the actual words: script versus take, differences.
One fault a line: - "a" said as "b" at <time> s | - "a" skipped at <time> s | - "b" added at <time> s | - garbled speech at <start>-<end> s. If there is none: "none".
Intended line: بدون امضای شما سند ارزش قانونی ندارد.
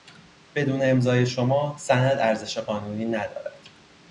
none